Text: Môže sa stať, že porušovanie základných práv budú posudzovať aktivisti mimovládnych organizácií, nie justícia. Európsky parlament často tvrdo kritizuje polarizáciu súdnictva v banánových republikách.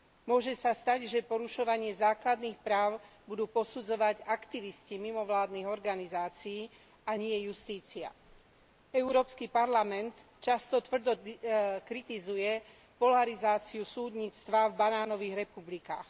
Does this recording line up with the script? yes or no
no